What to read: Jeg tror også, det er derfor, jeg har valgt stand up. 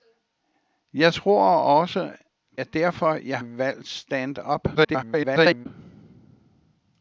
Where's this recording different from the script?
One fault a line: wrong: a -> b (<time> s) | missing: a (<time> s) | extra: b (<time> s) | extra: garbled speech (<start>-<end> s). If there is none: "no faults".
missing: det (2.1 s)
missing: har (3.4 s)
extra: garbled speech (4.8-5.7 s)